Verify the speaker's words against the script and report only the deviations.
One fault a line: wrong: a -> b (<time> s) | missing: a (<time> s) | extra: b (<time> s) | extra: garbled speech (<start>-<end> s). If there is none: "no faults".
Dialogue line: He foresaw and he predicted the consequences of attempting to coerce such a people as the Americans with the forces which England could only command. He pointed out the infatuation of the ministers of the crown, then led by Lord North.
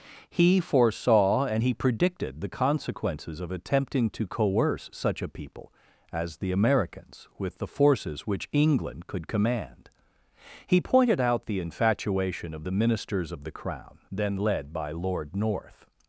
missing: only (9.3 s)